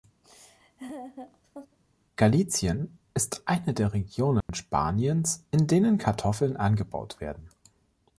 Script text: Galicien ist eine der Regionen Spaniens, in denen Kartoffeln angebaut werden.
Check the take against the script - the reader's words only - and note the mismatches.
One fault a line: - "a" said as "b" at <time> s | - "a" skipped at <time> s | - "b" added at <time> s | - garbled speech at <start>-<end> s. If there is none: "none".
none